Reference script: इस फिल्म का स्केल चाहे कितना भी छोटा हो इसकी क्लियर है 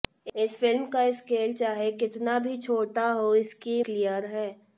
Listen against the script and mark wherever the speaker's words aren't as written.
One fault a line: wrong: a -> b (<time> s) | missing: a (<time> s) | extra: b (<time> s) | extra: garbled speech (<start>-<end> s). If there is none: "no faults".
no faults